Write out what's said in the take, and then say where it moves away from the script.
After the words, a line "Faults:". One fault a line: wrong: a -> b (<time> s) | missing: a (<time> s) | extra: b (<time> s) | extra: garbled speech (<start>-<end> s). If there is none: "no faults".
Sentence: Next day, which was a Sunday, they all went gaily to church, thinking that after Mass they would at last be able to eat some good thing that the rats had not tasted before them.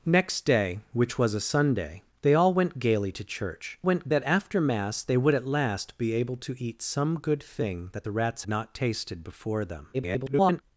Next day, which was a Sunday, they all went gaily to church, went that after Mass they would at last be able to eat some good thing that the rats not tasted before them. [garbled]
Faults:
wrong: thinking -> went (3.8 s)
missing: had (8.4 s)
extra: garbled speech (9.9-10.6 s)